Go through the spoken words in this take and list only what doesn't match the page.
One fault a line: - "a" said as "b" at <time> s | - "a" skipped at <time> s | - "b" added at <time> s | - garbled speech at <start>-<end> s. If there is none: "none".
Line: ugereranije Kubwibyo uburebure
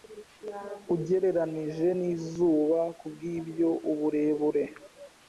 - "nizuba" added at 2.0 s